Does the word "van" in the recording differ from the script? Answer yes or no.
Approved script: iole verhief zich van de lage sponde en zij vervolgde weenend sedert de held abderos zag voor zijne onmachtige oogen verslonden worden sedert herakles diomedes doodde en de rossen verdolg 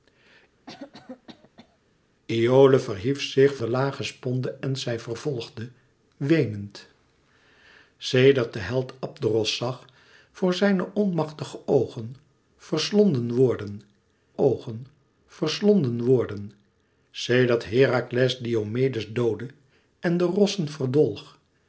yes